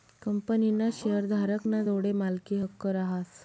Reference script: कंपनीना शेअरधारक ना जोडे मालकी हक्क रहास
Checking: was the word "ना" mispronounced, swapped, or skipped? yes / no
no